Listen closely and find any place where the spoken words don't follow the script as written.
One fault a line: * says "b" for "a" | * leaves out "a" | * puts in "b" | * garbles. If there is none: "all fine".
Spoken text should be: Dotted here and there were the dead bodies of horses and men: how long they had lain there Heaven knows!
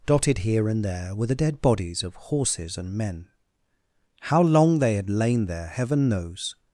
all fine